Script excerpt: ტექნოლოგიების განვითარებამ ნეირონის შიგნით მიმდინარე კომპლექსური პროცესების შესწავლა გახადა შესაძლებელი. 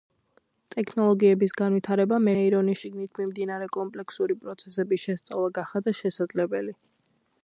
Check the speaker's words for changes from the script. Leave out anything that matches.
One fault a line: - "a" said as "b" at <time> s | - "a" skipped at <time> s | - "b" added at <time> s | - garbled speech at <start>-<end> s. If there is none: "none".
none